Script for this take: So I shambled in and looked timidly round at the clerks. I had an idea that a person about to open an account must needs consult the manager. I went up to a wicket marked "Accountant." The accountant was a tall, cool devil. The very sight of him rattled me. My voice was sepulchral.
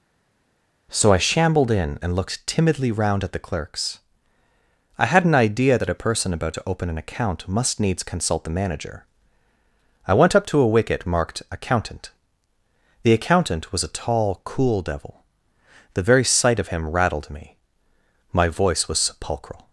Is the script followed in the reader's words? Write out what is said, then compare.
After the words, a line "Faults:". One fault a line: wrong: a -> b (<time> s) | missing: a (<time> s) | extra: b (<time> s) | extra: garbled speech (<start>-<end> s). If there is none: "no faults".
So I shambled in and looked timidly round at the clerks. I had an idea that a person about to open an account must needs consult the manager. I went up to a wicket marked "Accountant." The accountant was a tall, cool devil. The very sight of him rattled me. My voice was sepulchral.
Faults:
no faults